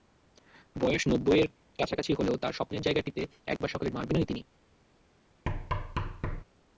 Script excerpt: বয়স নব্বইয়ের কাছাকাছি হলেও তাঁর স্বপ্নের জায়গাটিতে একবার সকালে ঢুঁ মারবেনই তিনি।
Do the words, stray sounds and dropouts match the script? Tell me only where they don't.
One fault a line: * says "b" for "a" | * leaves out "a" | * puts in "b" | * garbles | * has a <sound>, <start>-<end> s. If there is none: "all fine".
* has a dropout, 3.6-3.6 s
* leaves out "ঢুঁ"
* has a thud, 5.5-6.4 s